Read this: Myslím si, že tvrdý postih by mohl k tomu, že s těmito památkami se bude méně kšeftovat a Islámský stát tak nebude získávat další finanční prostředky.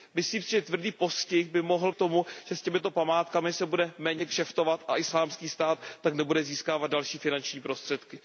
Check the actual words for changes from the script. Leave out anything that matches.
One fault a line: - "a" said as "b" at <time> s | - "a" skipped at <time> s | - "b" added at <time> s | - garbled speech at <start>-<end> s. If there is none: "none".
none